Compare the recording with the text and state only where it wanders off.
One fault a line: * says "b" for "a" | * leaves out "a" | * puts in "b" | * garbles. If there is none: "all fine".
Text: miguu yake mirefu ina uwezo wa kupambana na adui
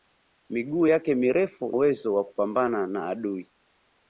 * leaves out "ina"